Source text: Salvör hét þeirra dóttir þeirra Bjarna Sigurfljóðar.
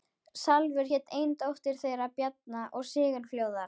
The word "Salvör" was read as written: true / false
true